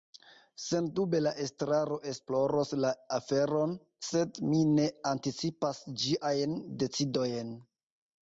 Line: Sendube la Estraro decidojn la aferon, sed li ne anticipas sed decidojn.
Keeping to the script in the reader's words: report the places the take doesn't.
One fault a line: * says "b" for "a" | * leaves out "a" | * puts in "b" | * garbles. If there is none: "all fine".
* says "esploros" for "decidojn"
* says "mi" for "li"
* says "ĝiajn" for "sed"